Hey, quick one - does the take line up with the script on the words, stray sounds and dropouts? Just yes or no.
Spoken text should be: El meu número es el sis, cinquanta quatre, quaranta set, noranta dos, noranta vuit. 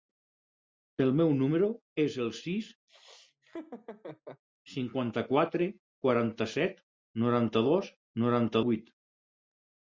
no